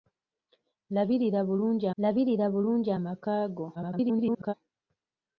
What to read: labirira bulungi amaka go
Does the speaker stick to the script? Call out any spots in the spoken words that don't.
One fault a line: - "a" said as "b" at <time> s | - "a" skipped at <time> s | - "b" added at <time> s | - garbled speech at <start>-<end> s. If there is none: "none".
- "labirira bulungi" added at 2.0 s
- garbled speech at 3.7-4.5 s